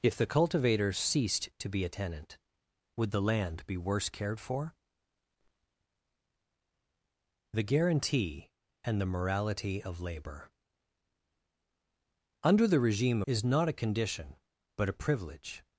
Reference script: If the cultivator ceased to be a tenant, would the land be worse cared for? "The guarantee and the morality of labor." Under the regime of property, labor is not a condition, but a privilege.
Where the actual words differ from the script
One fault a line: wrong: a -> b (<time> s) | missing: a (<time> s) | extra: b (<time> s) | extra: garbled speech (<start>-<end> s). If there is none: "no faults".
missing: of property labor (13.2 s)